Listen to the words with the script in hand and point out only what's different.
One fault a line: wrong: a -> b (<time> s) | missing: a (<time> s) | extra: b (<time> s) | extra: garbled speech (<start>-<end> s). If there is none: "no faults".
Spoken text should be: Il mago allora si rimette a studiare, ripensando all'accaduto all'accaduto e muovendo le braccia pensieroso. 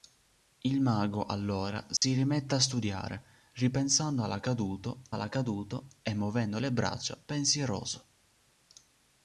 no faults